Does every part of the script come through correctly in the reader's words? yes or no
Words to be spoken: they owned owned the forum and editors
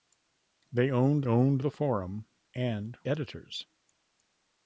yes